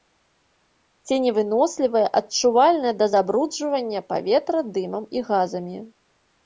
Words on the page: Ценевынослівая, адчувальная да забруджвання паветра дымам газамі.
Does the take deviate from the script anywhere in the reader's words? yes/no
yes